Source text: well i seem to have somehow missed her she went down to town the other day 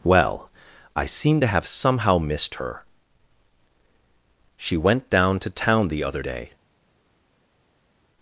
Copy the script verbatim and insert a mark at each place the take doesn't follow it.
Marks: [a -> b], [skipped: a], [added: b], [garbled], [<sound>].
well i seem to have somehow missed her she went down to town the other day